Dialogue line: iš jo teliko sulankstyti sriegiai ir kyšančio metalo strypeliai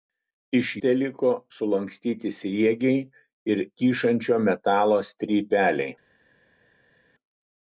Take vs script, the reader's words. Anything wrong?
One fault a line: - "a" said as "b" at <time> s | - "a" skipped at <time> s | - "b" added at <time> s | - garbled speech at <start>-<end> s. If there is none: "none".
- "jo" skipped at 0.7 s